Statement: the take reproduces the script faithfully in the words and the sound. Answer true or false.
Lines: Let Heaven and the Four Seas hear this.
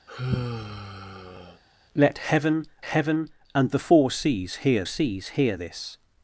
false